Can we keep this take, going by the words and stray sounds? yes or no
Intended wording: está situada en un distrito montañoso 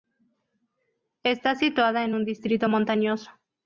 yes